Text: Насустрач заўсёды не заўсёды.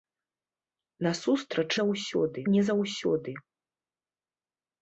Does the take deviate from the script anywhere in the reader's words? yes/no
no